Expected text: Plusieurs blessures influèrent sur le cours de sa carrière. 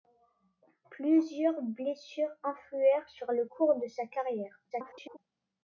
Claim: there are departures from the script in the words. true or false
true